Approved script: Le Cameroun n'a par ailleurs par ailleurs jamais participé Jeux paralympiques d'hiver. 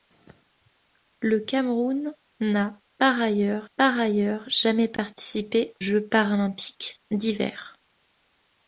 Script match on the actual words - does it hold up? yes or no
yes